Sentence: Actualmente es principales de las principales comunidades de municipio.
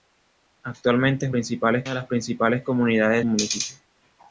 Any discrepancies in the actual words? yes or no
no